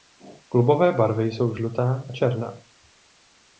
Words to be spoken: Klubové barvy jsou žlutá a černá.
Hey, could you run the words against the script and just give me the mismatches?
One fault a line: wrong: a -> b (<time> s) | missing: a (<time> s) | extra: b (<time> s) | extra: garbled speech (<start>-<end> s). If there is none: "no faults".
no faults